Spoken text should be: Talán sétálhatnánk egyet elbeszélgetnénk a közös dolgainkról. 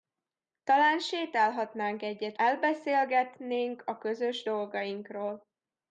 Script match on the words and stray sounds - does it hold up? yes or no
yes